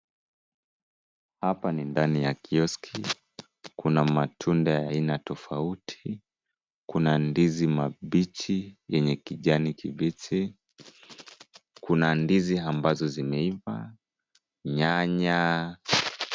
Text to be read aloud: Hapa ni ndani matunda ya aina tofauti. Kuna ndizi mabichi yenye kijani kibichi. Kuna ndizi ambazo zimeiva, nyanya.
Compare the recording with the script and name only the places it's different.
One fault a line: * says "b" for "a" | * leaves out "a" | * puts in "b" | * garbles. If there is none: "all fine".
* puts in "ya kioski Kuna"